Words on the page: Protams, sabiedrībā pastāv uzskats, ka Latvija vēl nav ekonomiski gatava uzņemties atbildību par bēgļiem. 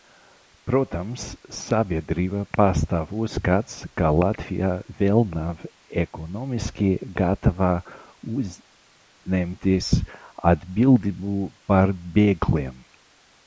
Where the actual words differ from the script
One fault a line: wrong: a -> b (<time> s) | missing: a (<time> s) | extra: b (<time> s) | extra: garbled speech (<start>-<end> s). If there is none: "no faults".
no faults